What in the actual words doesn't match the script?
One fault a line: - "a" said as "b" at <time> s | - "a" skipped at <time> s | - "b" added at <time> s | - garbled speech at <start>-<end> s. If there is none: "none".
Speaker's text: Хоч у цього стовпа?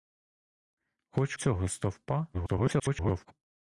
- "у" skipped at 1.4 s
- garbled speech at 2.3-3.3 s